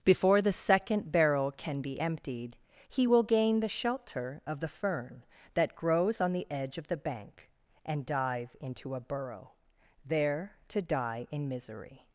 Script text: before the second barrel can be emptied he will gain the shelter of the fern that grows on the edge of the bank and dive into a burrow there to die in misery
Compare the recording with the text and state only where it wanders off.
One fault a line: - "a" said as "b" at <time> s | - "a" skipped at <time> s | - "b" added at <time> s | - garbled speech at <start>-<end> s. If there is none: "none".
none